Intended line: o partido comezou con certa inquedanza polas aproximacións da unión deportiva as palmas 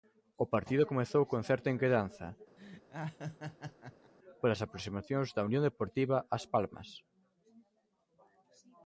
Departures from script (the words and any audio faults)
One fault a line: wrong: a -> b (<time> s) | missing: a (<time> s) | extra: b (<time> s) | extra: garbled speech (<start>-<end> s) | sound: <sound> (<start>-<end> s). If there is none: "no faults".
sound: laugh (2.6-4.1 s)